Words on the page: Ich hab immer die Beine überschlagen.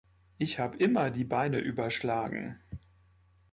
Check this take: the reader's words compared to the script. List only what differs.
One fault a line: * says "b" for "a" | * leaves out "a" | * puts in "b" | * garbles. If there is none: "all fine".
all fine